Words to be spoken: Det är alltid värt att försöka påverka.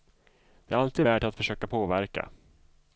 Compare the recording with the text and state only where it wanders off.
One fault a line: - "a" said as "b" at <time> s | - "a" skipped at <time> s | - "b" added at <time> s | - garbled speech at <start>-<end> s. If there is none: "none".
none